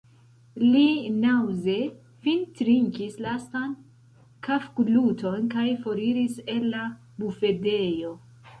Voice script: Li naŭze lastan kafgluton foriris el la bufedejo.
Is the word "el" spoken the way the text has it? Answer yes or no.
yes